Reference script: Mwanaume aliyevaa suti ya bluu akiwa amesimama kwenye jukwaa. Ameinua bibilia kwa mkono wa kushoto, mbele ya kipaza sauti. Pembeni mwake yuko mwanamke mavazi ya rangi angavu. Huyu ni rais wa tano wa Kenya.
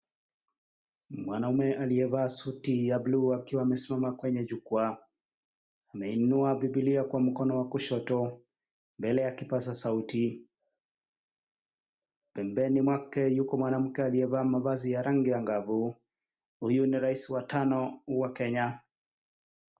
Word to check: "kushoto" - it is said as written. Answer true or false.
true